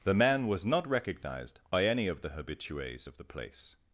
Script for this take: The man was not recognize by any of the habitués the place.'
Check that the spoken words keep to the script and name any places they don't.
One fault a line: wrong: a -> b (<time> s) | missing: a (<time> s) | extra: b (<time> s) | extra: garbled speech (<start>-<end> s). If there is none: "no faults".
wrong: recognize -> recognized (0.9 s)
extra: of (3.1 s)